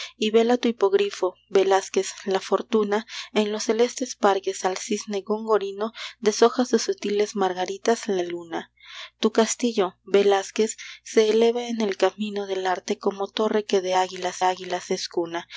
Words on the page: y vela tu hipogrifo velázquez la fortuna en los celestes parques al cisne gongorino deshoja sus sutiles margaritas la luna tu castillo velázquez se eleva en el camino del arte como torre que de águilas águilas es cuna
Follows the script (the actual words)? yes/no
yes